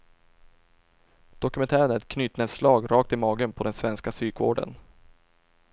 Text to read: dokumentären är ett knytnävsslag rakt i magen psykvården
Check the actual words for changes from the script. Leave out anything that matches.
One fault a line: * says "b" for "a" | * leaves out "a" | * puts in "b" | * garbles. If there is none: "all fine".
* puts in "på den svenska"